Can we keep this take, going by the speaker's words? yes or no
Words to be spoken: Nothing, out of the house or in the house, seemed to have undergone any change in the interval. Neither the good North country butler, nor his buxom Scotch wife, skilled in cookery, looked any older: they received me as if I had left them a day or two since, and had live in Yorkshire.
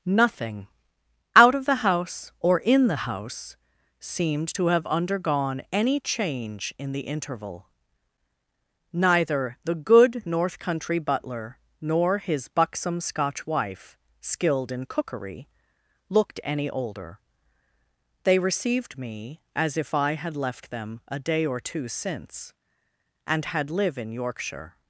yes